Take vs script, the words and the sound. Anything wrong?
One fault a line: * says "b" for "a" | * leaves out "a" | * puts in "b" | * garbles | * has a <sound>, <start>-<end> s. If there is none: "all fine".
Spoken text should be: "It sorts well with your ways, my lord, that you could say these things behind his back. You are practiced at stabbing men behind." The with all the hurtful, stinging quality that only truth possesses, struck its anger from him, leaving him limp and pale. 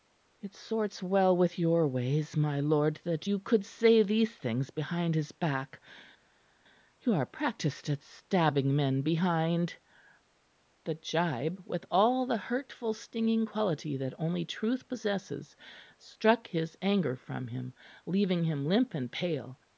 * puts in "gibe"
* says "his" for "its"